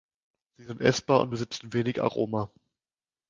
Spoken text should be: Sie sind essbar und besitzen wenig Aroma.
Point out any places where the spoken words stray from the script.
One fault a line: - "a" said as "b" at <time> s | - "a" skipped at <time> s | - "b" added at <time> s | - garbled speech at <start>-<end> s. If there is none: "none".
none